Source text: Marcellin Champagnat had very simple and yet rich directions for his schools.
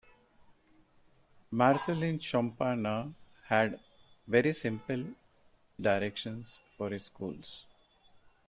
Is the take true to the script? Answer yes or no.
no